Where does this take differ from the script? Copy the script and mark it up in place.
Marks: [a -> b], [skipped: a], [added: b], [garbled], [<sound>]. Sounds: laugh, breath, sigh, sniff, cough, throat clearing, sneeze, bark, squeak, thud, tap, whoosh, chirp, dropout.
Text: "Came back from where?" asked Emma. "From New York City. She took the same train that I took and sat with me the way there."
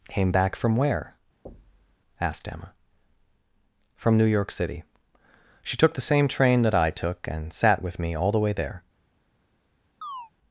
"Came back from where?" [thud] asked Emma. "From New York City. She took the same train that I took and sat with me [added: all] the way there." [chirp]